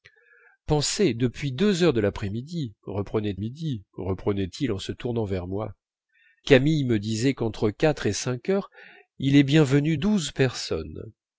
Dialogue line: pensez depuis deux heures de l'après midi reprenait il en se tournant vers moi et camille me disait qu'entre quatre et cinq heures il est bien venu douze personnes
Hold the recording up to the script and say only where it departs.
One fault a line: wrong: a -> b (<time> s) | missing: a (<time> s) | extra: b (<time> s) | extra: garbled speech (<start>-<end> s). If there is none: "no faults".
extra: midi reprenait (3.4 s)
missing: et (5.7 s)